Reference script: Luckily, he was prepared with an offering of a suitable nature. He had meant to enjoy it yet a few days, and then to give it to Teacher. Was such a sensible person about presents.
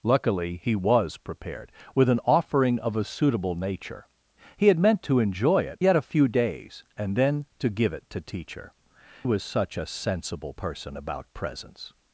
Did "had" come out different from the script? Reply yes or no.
no